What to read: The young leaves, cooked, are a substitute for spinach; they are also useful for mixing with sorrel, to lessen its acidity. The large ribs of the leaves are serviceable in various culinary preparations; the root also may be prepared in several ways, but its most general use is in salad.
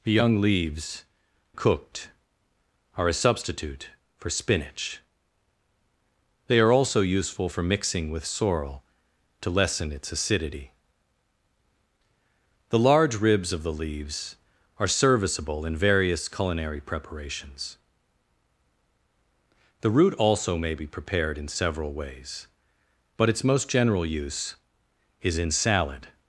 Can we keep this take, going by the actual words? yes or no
yes